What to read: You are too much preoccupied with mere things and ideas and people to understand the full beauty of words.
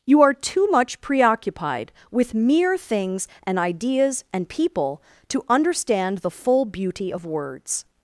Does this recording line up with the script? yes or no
yes